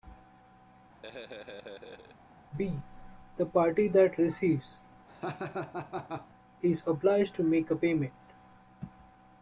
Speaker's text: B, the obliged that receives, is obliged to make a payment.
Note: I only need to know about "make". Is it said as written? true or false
true